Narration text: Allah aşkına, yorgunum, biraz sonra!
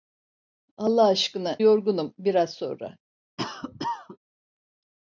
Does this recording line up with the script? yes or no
yes